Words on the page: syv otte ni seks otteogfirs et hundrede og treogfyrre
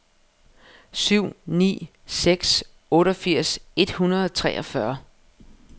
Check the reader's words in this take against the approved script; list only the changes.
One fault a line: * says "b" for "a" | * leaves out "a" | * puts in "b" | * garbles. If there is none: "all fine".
* leaves out "otte"